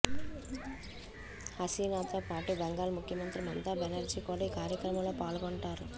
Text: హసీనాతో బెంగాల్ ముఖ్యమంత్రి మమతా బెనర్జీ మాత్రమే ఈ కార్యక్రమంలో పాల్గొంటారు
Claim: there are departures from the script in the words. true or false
true